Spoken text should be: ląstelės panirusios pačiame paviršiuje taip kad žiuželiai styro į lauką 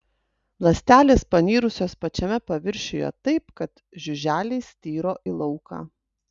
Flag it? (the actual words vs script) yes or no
no